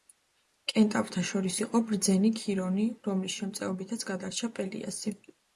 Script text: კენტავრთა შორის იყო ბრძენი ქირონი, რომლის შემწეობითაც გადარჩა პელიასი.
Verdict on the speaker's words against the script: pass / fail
pass